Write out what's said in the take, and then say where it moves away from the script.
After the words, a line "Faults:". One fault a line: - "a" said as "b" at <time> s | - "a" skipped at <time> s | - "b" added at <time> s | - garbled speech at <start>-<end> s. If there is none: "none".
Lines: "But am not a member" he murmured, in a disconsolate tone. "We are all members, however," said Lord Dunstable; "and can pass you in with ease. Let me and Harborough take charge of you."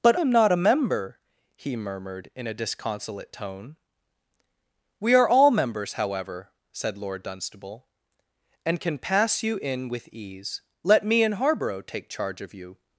"But am not a member" he murmured, in a disconsolate tone. "We are all members, however," said Lord Dunstable; "and can pass you in with ease. Let me and Harborough take charge of you."
Faults:
none